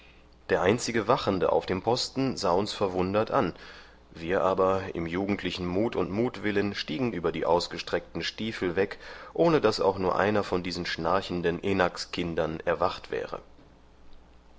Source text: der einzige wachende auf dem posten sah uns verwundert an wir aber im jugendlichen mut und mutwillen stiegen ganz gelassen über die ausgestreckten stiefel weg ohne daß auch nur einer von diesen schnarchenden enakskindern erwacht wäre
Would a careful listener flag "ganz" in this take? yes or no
yes